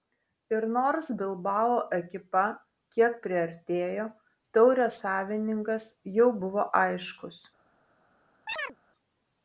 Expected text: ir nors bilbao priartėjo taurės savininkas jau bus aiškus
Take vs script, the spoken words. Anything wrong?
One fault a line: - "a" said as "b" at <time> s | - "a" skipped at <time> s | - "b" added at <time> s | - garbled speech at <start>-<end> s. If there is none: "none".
- "ekipa kiek" added at 2.0 s
- "bus" said as "buvo" at 6.5 s